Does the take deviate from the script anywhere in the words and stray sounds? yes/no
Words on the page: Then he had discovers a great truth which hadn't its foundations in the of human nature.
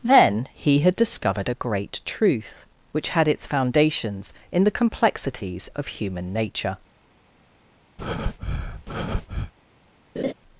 yes